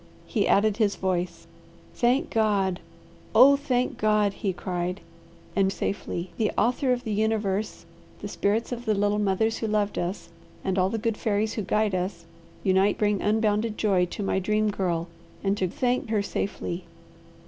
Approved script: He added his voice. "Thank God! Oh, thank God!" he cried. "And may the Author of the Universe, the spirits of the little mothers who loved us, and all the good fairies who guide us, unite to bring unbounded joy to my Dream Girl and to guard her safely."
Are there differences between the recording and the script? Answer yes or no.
yes